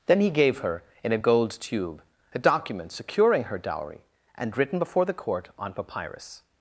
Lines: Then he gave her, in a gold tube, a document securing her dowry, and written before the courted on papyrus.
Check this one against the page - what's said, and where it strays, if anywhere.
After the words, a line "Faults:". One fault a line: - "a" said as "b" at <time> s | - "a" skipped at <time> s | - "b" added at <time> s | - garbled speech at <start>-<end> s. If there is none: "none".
Then he gave her, in a gold tube, a document securing her dowry, and written before the court on papyrus.
Faults:
- "courted" said as "court" at 5.1 s